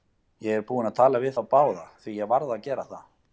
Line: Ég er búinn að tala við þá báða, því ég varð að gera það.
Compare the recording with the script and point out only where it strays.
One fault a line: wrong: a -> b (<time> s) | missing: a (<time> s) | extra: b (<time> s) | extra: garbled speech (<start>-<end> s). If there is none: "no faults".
no faults